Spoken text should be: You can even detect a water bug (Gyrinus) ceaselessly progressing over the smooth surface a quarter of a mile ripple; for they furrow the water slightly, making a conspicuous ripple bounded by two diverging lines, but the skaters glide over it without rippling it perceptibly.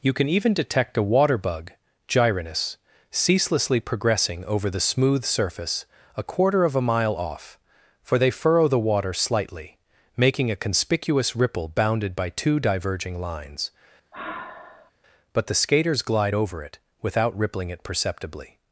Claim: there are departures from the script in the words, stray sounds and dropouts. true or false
true